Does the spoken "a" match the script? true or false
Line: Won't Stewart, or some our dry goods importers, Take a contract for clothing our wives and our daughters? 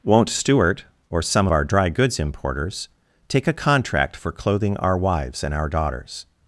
true